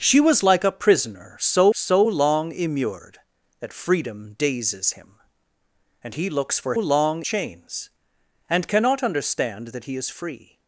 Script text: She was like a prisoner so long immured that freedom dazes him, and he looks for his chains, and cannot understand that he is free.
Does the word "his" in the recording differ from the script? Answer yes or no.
yes